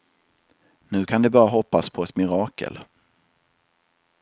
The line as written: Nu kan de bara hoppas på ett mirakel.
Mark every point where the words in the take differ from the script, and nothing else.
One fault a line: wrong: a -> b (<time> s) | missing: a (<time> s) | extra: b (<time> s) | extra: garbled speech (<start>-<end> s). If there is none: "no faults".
no faults